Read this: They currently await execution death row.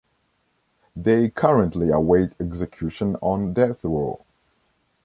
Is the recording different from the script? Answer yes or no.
yes